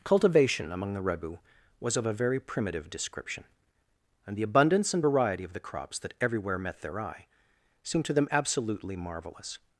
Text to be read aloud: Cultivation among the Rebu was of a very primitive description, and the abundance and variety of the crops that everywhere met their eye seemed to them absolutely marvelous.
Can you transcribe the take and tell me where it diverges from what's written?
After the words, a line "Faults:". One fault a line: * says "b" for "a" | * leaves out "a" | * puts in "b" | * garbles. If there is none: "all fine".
Cultivation among the Rebu was of a very primitive description, and the abundance and variety of the crops that everywhere met their eye seemed to them absolutely marvelous.
Faults:
all fine